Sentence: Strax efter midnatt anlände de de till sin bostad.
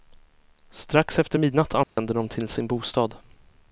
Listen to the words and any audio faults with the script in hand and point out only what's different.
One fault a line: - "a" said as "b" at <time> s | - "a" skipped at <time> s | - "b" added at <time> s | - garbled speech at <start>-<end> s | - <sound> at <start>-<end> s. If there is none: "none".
- dropout at 1.8-2.0 s
- "de" skipped at 2.3 s